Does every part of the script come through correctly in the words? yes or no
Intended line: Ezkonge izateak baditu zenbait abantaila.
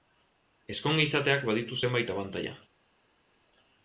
yes